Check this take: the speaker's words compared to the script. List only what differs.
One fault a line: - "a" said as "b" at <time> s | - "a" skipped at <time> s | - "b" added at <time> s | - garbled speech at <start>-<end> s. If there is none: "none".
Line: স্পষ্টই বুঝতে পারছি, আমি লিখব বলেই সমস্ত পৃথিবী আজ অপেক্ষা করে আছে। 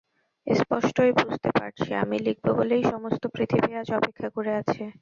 none